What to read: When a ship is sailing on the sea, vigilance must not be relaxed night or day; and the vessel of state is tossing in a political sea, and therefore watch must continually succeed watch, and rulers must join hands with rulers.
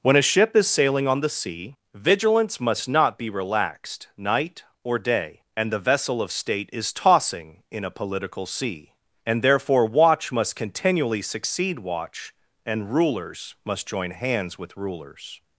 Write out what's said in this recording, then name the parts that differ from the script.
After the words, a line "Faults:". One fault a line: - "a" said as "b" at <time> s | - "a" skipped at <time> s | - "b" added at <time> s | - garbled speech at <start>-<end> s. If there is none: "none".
When a ship is sailing on the sea, vigilance must not be relaxed night or day; and the vessel of state is tossing in a political sea, and therefore watch must continually succeed watch, and rulers must join hands with rulers.
Faults:
none